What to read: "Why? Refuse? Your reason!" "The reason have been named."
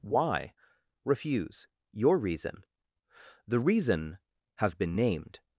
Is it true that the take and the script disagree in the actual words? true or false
false